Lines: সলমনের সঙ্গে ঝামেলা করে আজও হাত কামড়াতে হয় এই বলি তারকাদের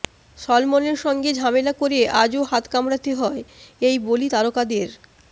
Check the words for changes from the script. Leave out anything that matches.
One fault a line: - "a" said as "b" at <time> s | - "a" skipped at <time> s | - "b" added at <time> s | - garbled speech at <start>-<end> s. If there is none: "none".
none